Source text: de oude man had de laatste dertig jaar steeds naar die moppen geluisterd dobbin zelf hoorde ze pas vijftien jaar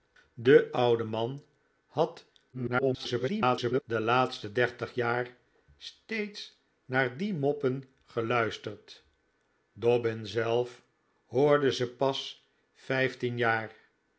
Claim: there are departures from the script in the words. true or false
true